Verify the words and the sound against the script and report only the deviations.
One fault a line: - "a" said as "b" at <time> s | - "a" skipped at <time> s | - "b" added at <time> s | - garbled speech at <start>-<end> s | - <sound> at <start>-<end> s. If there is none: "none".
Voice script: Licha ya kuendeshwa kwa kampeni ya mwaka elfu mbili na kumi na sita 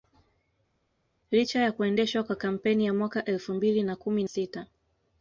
- "na" skipped at 4.2 s